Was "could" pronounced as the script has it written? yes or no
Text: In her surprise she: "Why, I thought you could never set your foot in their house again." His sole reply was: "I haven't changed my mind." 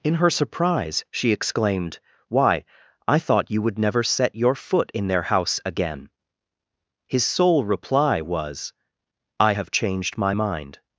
no